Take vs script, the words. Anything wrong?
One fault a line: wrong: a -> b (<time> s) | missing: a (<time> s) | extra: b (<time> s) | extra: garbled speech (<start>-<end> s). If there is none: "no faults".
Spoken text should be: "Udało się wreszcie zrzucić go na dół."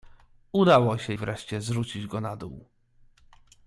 no faults